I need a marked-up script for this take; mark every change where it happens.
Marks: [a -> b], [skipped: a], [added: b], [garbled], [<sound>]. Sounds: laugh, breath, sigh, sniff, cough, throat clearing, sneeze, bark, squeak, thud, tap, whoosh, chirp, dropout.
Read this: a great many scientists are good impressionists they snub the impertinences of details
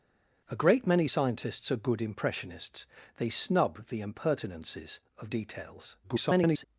a great many scientists are good impressionists they snub the impertinences of details [garbled]